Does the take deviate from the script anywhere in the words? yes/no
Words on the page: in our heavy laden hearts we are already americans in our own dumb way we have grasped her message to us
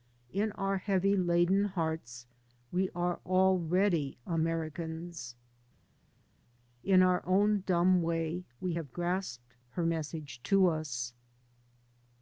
no